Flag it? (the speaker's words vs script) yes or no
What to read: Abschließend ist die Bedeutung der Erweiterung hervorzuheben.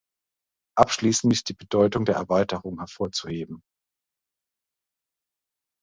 no